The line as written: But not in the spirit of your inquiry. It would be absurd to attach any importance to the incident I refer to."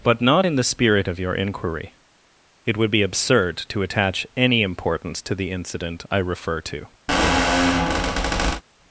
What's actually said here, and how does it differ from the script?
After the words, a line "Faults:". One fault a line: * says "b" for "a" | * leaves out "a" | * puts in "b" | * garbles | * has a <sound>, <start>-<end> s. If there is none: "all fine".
But not in the spirit of your inquiry. It would be absurd to attach any importance to the incident I refer to."
Faults:
* has a squeak, 7.1-8.6 s